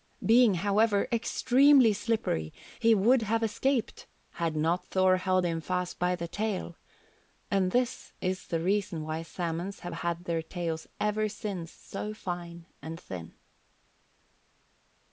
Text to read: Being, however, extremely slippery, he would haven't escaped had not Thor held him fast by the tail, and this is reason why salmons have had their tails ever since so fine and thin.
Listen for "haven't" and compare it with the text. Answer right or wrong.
wrong